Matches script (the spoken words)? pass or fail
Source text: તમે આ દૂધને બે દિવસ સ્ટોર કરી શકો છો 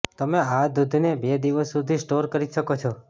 fail